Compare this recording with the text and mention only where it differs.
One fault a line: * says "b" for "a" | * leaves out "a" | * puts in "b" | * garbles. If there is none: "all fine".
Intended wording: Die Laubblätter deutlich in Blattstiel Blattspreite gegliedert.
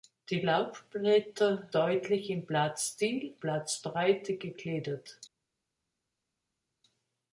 all fine